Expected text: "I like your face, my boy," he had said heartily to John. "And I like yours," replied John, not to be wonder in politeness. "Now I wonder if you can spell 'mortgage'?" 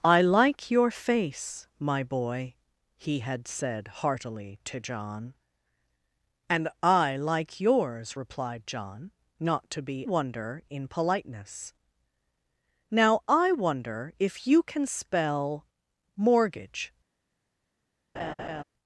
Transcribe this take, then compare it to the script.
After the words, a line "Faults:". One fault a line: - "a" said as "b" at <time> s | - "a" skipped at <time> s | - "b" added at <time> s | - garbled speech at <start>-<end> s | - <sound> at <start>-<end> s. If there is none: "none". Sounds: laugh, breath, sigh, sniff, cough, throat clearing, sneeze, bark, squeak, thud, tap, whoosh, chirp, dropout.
"I like your face, my boy," he had said heartily to John. "And I like yours," replied John, not to be wonder in politeness. "Now I wonder if you can spell 'mortgage'?"
Faults:
- laugh at 18.1-18.6 s